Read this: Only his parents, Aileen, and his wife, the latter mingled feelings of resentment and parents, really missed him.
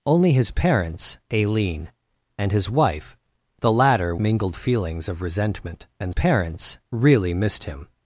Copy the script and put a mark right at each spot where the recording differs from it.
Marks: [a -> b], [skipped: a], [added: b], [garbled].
Only his parents, Aileen, and his wife, the latter mingled feelings of resentment and parents, really missed him.